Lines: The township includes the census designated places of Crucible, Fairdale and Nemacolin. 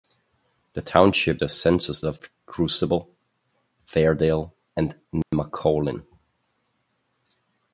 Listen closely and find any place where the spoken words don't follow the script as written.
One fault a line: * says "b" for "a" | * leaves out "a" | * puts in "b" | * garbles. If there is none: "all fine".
* leaves out "includes"
* leaves out "designated places"